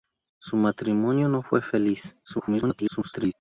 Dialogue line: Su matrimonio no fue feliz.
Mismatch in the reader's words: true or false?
true